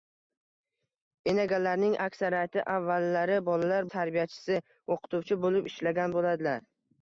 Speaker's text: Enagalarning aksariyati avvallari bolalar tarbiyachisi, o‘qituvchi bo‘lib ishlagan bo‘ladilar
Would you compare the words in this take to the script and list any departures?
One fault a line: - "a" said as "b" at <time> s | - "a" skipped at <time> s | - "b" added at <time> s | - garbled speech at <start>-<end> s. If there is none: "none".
none